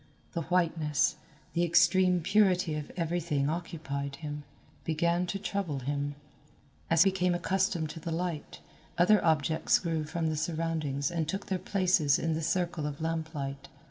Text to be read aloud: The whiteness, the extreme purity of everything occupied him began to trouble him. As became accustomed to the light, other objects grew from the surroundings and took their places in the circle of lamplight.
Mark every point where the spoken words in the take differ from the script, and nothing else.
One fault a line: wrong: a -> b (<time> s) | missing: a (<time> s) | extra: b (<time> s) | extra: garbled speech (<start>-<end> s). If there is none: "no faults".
no faults